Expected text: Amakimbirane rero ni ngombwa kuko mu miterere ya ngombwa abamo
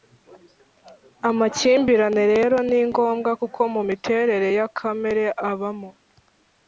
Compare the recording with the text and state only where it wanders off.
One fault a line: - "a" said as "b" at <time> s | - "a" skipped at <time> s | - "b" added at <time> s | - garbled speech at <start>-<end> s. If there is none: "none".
- "ngombwa" said as "kamere" at 4.8 s